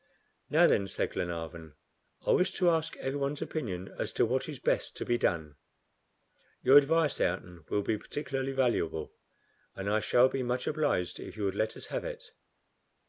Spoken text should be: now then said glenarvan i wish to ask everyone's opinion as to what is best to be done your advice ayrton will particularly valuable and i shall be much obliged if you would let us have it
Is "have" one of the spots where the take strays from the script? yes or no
no